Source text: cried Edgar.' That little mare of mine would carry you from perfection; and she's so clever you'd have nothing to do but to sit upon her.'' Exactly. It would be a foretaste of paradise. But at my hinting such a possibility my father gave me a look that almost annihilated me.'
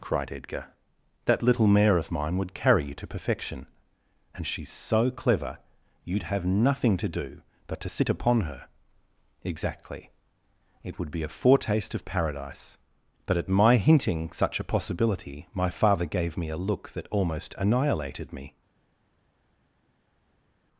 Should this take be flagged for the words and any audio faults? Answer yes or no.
yes